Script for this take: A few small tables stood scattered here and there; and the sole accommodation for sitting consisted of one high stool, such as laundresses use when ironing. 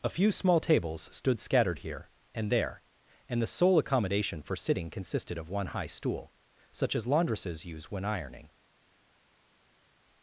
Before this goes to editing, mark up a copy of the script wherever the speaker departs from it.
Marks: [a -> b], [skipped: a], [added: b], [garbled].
A few small tables stood scattered here and there; and the sole accommodation for sitting consisted of one high stool, such as laundresses use when ironing.